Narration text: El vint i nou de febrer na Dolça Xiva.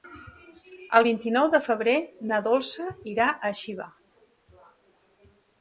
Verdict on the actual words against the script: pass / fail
fail